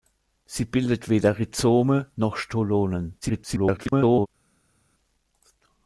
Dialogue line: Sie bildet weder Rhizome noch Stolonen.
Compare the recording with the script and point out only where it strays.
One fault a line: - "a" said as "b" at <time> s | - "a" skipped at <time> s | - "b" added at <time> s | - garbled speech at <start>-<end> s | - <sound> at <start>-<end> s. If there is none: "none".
- garbled speech at 3.2-4.3 s